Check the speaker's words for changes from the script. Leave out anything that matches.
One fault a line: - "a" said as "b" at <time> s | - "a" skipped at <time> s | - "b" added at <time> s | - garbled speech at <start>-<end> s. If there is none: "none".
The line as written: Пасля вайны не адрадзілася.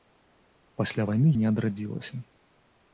none